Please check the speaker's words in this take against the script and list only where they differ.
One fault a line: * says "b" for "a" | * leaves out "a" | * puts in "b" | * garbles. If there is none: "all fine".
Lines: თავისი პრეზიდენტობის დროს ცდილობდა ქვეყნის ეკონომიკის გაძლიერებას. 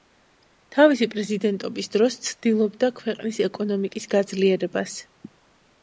all fine